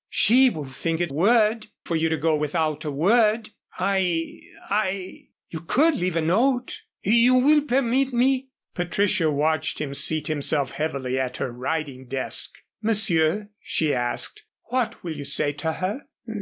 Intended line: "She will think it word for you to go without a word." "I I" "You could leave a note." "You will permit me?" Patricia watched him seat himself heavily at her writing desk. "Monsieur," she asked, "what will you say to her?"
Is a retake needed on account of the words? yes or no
no